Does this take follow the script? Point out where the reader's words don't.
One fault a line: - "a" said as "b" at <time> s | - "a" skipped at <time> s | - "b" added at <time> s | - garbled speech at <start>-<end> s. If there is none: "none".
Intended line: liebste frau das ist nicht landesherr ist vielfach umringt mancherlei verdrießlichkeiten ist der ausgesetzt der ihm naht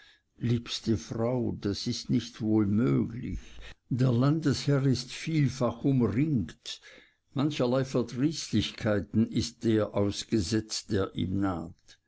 - "wohl möglich der" added at 2.4 s